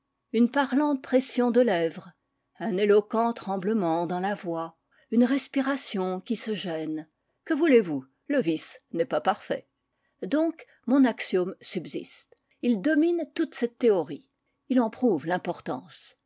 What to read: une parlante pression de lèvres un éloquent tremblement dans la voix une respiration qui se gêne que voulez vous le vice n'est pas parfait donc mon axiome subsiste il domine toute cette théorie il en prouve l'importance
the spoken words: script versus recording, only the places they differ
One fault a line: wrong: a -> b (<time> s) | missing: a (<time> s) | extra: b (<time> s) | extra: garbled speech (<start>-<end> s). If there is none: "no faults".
no faults